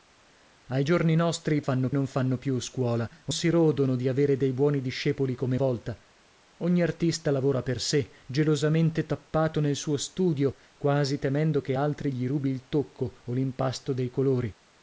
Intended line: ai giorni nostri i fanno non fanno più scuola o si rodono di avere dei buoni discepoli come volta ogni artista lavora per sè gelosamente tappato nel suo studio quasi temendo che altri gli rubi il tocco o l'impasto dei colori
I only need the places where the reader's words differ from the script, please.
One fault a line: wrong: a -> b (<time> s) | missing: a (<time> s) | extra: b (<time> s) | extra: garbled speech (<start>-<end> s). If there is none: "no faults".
no faults